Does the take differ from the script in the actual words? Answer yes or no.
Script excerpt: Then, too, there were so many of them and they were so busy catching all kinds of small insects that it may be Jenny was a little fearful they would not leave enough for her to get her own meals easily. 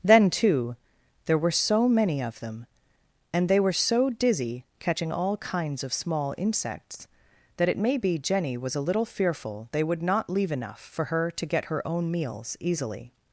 yes